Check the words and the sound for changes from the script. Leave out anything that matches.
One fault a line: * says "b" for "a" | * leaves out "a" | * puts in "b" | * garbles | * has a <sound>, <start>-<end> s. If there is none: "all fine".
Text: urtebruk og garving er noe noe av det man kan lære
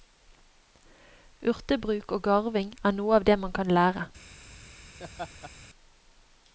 * leaves out "noe"
* has a laugh, 5.0-5.5 s